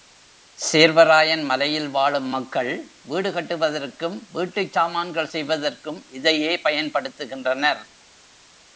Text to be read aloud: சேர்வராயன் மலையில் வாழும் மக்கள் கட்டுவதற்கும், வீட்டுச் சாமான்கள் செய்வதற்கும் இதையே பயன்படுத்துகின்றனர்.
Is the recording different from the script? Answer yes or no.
yes